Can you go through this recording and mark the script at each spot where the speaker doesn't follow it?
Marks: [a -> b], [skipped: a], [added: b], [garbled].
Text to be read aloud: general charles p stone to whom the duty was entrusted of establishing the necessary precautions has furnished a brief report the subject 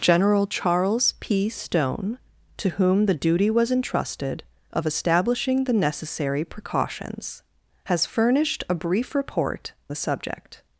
general charles p stone to whom the duty was entrusted of establishing the necessary precautions has furnished a brief report the subject